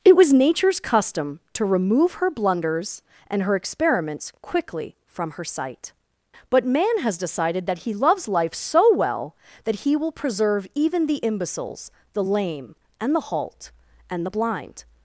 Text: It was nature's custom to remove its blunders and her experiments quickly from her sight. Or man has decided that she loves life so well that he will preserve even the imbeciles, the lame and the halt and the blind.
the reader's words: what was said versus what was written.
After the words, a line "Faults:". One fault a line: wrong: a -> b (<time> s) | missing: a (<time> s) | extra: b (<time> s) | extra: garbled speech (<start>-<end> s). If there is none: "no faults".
It was nature's custom to remove her blunders and her experiments quickly from her sight. But man has decided that he loves life so well that he will preserve even the imbeciles, the lame and the halt and the blind.
Faults:
wrong: its -> her (2.1 s)
wrong: Or -> But (6.5 s)
wrong: she -> he (7.8 s)